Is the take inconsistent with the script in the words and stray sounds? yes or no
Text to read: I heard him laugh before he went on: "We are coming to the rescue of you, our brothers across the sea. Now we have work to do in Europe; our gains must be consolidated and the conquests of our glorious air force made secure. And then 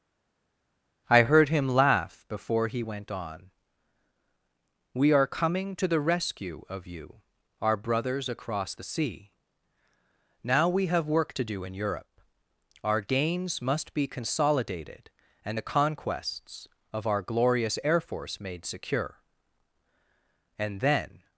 no